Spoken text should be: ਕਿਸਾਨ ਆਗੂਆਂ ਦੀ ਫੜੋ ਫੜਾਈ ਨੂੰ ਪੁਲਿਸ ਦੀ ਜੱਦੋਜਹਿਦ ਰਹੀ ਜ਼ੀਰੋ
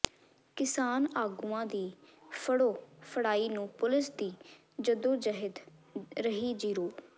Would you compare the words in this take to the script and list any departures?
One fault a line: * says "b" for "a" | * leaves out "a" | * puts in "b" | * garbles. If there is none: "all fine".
all fine